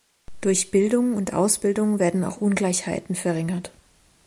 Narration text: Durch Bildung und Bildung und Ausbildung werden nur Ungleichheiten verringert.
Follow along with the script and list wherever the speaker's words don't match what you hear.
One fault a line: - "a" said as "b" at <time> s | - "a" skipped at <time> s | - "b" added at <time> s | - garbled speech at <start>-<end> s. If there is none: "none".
- "Bildung und" skipped at 1.4 s
- "nur" said as "auch" at 2.2 s